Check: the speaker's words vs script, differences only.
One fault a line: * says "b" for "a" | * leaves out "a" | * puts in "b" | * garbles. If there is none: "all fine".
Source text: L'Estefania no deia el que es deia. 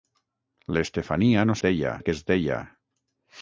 all fine